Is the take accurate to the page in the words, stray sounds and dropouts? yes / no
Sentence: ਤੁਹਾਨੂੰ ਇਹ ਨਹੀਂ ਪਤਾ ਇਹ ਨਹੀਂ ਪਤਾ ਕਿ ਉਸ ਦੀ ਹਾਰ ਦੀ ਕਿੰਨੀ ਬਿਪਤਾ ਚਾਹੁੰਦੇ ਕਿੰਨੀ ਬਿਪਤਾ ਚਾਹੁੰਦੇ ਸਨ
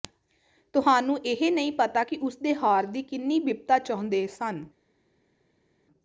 no